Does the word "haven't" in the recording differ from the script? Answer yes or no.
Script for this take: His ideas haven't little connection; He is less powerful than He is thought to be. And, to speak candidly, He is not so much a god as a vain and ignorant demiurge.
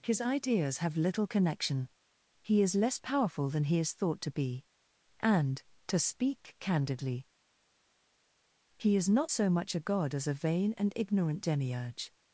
yes